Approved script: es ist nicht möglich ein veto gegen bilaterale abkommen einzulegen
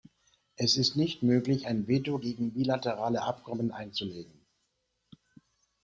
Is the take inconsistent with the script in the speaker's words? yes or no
no